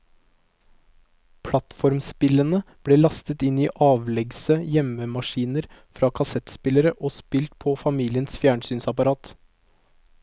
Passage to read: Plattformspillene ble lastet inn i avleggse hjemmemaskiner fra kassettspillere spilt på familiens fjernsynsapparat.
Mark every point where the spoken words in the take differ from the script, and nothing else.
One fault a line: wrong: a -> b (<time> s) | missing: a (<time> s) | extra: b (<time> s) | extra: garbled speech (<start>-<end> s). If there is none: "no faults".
extra: og (7.0 s)